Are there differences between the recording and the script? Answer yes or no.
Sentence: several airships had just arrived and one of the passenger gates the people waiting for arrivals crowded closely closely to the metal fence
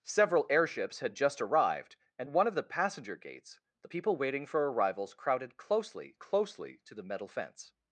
no